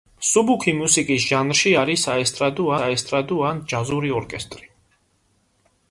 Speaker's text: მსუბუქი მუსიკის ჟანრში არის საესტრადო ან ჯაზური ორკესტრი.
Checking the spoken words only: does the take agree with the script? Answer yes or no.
no